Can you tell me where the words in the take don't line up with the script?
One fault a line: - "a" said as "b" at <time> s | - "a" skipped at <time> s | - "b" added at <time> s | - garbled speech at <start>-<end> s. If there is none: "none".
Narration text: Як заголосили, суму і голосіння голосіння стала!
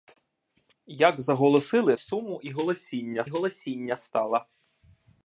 none